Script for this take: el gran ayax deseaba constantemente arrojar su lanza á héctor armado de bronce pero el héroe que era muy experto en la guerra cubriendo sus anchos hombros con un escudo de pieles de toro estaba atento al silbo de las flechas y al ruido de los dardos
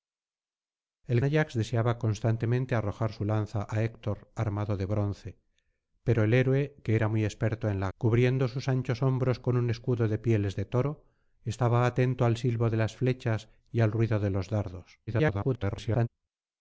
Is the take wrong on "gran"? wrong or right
wrong